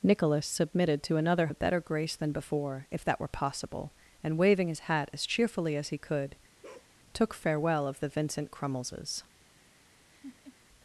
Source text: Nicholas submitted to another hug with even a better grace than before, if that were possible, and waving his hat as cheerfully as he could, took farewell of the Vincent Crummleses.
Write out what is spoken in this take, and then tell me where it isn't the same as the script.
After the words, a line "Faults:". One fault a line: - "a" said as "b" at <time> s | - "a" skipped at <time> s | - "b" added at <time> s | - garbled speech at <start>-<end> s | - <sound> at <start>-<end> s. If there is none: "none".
Nicholas submitted to another a better grace than before, if that were possible, and waving his hat as cheerfully as he could, took farewell of the Vincent Crummleses.
Faults:
- "hug with even" skipped at 1.5 s
- bark at 6.6-6.9 s
- laugh at 10.1-10.6 s